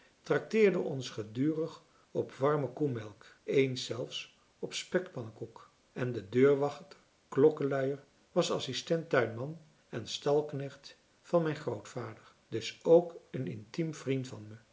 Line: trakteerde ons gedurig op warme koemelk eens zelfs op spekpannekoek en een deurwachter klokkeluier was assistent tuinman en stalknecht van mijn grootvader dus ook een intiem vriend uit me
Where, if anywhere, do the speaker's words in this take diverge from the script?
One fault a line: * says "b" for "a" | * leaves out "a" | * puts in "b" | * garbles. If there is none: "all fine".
* says "de" for "een"
* says "van" for "uit"